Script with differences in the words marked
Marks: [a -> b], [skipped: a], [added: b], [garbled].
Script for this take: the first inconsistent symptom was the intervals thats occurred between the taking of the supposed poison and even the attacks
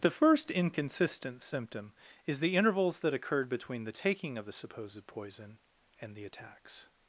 the first inconsistent symptom [was -> is] the intervals [thats -> that] occurred between the taking of the supposed poison and [skipped: even] the attacks